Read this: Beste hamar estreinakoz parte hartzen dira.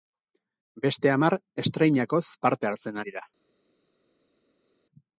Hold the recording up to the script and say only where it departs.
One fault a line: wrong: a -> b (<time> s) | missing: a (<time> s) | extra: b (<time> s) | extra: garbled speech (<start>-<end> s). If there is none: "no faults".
no faults